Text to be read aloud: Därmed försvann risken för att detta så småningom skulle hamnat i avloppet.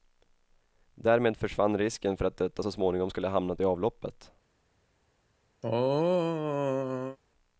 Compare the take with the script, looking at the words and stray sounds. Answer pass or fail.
fail